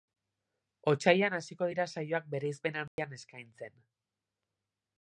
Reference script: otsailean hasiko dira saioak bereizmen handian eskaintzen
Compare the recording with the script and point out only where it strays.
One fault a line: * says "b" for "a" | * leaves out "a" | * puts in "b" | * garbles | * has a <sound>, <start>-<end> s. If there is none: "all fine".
* has a dropout, 2.9-3.0 s